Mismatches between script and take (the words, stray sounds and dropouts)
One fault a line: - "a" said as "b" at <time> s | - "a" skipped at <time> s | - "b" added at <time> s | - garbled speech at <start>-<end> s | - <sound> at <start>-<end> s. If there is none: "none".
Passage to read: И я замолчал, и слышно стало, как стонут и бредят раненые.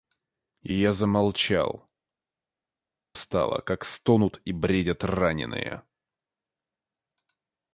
- "и слышно" skipped at 1.9 s